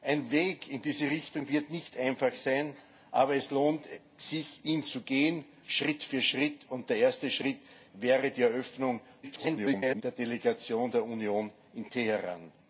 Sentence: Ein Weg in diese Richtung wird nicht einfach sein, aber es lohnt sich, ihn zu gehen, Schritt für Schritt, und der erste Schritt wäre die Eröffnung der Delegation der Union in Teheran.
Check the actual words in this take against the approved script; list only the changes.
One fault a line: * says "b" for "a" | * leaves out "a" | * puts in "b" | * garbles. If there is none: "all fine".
* garbles